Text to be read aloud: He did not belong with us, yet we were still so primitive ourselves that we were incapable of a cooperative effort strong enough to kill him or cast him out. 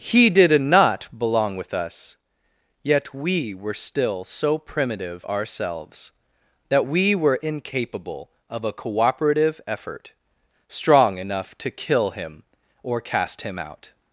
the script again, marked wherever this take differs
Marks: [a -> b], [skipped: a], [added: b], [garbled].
He did not belong with us, yet we were still so primitive ourselves that we were incapable of a cooperative effort strong enough to kill him or cast him out.